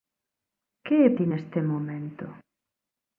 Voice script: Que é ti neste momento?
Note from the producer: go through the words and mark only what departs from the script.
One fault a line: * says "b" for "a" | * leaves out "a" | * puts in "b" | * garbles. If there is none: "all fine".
all fine